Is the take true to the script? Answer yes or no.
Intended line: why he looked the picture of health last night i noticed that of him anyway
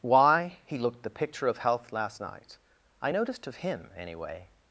no